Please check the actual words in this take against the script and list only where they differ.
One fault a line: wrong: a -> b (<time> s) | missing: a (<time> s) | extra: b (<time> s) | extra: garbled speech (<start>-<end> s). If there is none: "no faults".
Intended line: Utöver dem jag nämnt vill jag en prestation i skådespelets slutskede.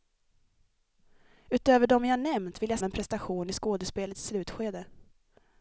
no faults